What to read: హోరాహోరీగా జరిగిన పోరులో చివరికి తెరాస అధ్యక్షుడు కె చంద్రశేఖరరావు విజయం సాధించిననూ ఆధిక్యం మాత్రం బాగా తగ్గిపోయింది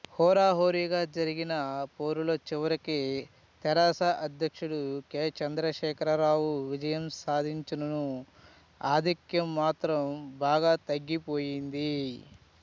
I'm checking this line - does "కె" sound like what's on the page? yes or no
yes